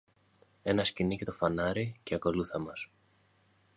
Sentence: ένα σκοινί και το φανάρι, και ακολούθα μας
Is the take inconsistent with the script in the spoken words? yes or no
no